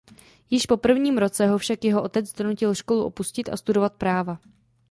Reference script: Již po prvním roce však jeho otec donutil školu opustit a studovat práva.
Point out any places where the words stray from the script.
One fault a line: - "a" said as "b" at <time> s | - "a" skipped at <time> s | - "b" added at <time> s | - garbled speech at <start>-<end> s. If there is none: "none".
- "ho" added at 1.5 s